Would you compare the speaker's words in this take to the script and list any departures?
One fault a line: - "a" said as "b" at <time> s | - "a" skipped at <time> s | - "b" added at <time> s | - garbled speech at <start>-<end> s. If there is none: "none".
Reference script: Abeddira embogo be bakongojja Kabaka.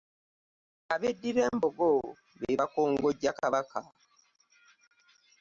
none